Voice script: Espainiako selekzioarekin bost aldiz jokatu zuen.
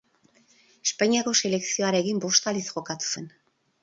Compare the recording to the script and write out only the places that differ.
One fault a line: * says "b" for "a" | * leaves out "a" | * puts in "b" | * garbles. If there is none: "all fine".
all fine